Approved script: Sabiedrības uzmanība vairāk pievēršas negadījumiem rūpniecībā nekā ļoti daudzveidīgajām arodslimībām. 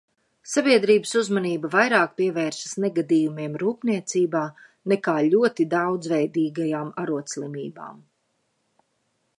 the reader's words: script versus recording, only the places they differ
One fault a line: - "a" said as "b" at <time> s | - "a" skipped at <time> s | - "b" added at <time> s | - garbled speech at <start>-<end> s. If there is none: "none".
none